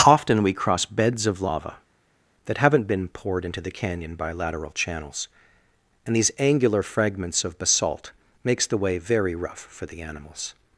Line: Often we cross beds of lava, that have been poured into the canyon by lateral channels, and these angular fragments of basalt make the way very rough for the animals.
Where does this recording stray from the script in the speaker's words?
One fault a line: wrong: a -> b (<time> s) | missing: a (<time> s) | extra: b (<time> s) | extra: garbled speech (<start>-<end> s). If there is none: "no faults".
wrong: have -> haven't (2.6 s)
wrong: make -> makes (8.4 s)